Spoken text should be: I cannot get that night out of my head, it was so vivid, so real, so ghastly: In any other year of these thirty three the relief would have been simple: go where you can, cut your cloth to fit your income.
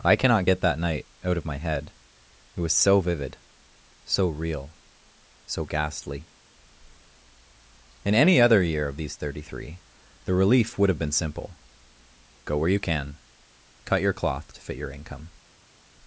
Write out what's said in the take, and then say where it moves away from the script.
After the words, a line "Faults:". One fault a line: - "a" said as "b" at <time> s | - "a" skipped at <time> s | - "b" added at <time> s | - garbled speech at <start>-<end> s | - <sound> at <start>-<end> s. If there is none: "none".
I cannot get that night out of my head, it was so vivid, so real, so ghastly: In any other year of these thirty three the relief would have been simple: go where you can, cut your cloth to fit your income.
Faults:
none